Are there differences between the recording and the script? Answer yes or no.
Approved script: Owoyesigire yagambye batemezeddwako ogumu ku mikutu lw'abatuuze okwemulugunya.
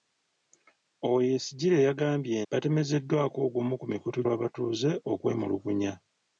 no